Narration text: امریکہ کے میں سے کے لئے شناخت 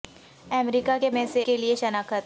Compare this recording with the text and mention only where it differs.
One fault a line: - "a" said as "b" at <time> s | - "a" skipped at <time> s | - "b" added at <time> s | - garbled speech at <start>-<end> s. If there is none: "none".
none